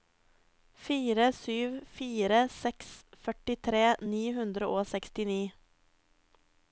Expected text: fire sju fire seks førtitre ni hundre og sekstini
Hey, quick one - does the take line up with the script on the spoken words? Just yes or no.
yes